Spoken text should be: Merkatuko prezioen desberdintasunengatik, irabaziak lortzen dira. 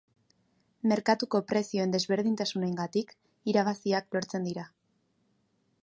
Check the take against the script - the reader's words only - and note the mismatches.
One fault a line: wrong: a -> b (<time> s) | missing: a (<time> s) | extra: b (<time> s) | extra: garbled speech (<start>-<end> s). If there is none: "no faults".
no faults